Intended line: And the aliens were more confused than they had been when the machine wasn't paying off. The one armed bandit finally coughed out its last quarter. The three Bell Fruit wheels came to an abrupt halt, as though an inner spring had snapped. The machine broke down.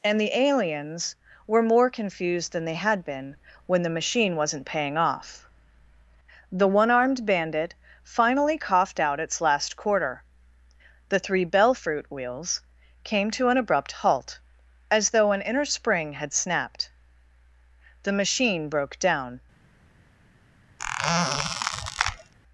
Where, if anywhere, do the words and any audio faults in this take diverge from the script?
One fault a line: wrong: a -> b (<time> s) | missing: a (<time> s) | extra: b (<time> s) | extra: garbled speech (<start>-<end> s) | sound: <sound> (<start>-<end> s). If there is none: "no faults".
sound: squeak (20.8-22.3 s)